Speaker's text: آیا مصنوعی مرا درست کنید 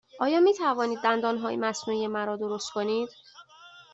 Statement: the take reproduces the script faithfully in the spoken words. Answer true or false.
false